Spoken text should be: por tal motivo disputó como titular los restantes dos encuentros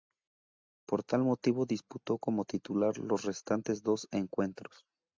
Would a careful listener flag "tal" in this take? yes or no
no